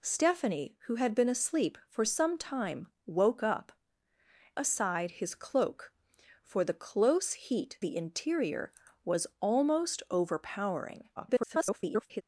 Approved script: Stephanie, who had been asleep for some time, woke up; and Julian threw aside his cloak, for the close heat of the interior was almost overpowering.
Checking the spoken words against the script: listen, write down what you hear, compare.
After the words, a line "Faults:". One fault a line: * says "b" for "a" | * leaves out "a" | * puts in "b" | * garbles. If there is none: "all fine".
Stephanie, who had been asleep for some time, woke up; aside his cloak, for the close heat the interior was almost overpowering. [garbled]
Faults:
* leaves out "and Julian threw"
* leaves out "of"
* garbles